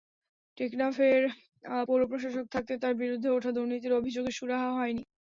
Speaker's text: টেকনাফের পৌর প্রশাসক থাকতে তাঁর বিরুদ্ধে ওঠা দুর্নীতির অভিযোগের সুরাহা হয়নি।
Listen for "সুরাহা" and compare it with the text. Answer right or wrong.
right